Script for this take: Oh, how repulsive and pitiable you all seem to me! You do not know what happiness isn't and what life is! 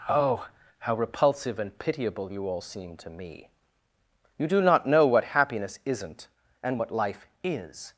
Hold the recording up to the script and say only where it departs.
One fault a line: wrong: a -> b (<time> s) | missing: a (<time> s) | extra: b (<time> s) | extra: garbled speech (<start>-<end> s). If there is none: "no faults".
no faults